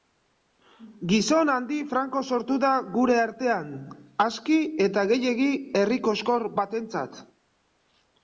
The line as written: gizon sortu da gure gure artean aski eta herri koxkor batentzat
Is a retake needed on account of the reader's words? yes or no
yes